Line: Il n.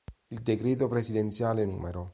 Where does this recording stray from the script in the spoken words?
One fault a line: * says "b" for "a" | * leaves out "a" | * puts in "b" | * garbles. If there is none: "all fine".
* puts in "decreto presidenziale"